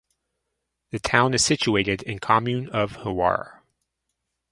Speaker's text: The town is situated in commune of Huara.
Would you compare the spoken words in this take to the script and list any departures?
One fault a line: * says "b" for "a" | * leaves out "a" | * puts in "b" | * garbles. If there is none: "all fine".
all fine